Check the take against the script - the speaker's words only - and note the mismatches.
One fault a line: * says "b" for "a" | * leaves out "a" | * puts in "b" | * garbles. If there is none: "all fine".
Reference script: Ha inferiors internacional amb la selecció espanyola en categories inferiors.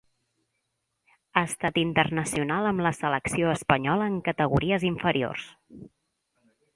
* says "estat" for "inferiors"